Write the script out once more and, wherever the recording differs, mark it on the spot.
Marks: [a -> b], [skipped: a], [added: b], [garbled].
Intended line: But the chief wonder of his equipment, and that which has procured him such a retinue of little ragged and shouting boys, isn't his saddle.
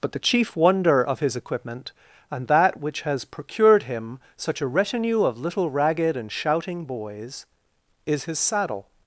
But the chief wonder of his equipment, and that which has procured him such a retinue of little ragged and shouting boys, [isn't -> is] his saddle.